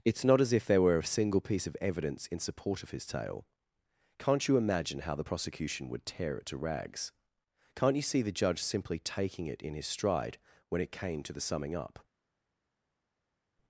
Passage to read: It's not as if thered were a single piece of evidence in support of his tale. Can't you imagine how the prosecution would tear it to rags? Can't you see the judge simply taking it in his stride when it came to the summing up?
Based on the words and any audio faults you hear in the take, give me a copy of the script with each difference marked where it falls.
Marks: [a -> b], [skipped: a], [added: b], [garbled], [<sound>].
It's not as if [thered -> there] were a single piece of evidence in support of his tale. Can't you imagine how the prosecution would tear it to rags? Can't you see the judge simply taking it in his stride when it came to the summing up?